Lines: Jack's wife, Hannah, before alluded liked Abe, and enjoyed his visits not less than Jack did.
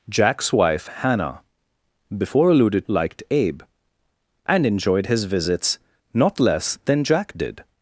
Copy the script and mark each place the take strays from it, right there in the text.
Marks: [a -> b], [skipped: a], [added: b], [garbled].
Jack's wife, Hannah, before alluded liked Abe, and enjoyed his visits not less than Jack did.